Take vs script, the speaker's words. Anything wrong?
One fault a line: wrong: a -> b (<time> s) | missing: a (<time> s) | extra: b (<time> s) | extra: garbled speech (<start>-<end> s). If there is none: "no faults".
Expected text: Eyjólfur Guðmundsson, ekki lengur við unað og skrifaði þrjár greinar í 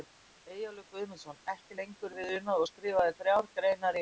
no faults